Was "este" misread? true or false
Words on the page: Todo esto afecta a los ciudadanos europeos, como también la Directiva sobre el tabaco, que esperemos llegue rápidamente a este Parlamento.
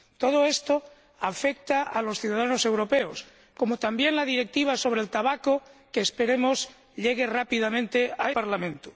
true